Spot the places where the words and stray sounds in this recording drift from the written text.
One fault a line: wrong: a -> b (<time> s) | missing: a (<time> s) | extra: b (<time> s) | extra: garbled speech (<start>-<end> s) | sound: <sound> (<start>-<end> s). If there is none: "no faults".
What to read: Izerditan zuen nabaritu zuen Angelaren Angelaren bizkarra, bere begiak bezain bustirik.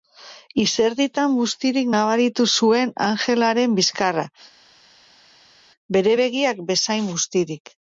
wrong: zuen -> bustirik (1.4 s)
missing: Angelaren (3.7 s)